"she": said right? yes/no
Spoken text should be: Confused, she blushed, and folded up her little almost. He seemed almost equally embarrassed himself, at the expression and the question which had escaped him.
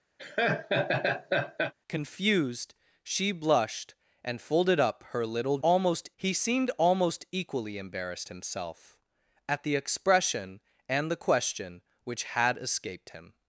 yes